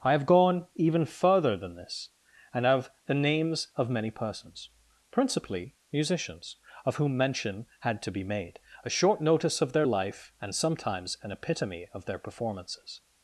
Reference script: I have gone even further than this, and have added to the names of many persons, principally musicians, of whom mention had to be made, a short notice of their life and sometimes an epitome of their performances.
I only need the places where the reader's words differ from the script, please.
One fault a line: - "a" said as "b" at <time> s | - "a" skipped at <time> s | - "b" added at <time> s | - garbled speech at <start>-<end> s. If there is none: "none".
- "added to" skipped at 2.9 s